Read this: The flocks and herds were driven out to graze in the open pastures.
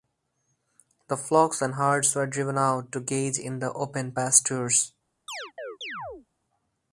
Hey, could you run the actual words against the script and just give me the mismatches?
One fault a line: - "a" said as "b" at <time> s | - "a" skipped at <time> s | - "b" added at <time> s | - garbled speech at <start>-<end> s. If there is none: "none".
none